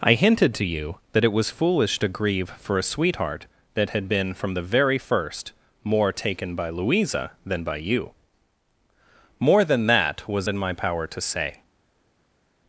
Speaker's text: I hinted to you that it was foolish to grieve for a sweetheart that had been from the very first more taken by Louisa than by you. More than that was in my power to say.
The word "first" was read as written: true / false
true